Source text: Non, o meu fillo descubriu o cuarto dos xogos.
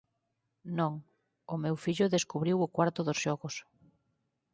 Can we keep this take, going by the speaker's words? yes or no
yes